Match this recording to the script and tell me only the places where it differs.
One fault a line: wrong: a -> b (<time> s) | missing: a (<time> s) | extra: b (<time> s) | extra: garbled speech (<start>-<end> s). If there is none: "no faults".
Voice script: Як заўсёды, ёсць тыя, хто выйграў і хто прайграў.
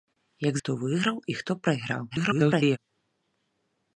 missing: заўсёды ёсць тыя (0.6 s)
extra: garbled speech (2.1-2.8 s)